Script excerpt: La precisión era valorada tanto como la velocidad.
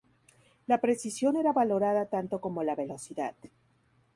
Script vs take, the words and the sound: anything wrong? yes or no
no